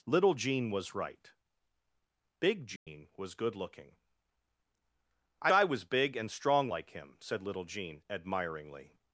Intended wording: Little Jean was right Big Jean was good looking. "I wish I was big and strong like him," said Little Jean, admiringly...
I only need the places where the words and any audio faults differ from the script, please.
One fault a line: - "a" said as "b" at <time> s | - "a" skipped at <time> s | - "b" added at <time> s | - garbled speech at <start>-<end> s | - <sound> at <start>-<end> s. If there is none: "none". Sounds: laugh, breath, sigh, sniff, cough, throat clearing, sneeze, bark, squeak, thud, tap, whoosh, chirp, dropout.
- dropout at 2.8-2.9 s
- "wish" skipped at 5.5 s